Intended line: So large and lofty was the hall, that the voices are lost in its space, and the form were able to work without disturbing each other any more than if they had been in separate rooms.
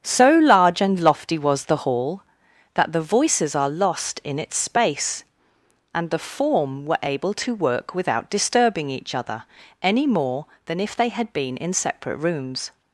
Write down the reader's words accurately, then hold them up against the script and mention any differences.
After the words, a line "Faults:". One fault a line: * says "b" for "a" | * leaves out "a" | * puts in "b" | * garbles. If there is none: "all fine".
So large and lofty was the hall, that the voices are lost in its space, and the form were able to work without disturbing each other any more than if they had been in separate rooms.
Faults:
all fine